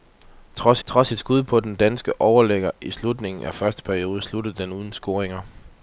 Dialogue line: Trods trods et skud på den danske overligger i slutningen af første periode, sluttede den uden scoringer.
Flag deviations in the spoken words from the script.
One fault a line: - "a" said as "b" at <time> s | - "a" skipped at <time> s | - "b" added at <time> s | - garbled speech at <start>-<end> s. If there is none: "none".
none